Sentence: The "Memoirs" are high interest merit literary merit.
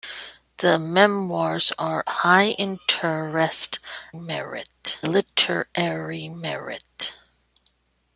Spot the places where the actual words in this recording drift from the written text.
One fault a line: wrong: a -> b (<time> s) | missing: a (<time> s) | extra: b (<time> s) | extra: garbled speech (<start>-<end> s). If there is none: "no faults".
no faults